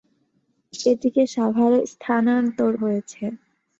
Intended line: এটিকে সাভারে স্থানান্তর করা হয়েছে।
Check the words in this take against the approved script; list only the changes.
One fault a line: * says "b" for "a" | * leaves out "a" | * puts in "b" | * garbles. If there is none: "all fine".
* leaves out "করা"